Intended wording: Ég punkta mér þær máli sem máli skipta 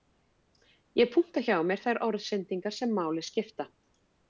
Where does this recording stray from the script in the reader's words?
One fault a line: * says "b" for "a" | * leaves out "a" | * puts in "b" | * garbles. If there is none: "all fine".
* puts in "hjá"
* says "orðsendingar" for "máli"